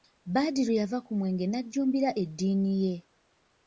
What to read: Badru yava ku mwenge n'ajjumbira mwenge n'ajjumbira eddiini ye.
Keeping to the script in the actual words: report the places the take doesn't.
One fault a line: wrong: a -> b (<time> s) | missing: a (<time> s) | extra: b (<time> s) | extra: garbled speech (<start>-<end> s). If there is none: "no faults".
missing: mwenge n'ajjumbira (2.1 s)